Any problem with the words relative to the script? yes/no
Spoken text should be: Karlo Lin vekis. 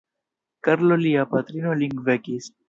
yes